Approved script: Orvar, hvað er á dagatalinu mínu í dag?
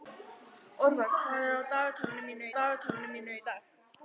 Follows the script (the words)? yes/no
no